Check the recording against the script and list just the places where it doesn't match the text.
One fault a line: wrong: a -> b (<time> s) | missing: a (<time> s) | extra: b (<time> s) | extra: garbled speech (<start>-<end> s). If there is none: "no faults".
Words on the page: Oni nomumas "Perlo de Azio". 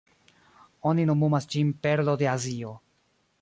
extra: ĝin (1.6 s)